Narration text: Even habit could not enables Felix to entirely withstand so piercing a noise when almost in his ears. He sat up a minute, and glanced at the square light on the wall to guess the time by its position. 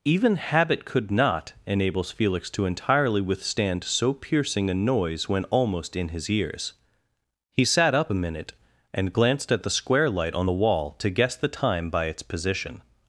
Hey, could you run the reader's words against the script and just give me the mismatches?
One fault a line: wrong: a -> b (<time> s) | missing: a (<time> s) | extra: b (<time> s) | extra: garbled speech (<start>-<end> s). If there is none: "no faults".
no faults